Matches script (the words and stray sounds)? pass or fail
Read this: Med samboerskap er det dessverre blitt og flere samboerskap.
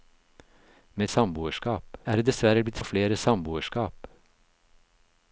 pass